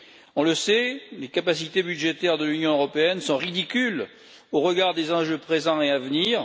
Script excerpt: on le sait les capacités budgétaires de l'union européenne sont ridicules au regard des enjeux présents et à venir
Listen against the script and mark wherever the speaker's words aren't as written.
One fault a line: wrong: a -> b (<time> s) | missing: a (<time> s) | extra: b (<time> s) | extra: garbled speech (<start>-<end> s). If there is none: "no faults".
no faults